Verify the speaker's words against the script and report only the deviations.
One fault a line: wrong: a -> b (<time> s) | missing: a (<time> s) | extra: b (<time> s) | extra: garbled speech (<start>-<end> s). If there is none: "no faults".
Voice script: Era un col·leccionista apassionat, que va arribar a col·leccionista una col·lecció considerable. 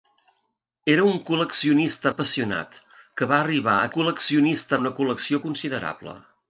no faults